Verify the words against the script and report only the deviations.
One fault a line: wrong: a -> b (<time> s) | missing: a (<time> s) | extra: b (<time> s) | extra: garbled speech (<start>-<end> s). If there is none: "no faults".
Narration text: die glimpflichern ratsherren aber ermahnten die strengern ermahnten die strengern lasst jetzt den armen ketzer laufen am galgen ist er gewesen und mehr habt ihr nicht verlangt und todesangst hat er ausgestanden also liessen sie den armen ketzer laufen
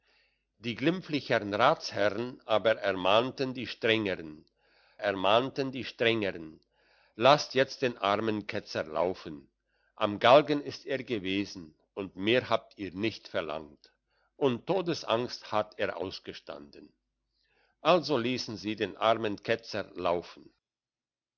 no faults